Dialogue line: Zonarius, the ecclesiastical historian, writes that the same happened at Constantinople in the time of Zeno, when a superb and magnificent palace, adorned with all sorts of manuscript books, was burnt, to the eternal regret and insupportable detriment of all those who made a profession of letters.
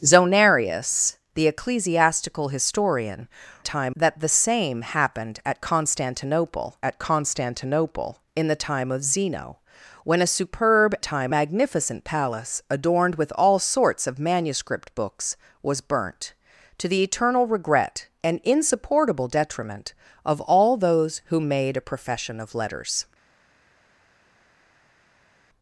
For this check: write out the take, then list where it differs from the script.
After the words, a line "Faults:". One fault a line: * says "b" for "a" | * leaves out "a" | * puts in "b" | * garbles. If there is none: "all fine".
Zonarius, the ecclesiastical historian, time that the same happened at Constantinople at Constantinople in the time of Zeno, when a superb time magnificent palace, adorned with all sorts of manuscript books, was burnt, to the eternal regret and insupportable detriment of all those who made a profession of letters.
Faults:
* says "time" for "writes"
* puts in "at Constantinople"
* says "time" for "and"